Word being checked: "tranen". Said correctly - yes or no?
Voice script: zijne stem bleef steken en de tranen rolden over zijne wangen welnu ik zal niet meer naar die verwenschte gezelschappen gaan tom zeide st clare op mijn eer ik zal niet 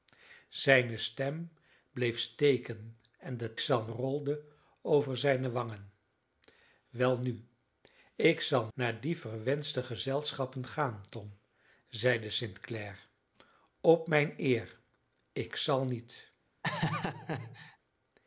no